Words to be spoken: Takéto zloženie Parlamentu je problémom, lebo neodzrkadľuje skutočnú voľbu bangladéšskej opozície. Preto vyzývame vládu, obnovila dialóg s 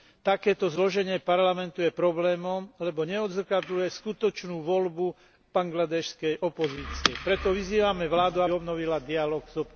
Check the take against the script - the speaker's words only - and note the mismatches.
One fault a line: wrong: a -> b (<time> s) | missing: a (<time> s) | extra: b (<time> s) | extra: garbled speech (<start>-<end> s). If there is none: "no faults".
no faults